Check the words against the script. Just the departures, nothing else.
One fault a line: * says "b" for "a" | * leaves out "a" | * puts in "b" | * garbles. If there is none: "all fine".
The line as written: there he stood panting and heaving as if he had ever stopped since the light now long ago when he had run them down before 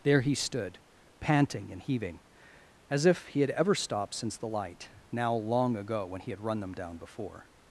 all fine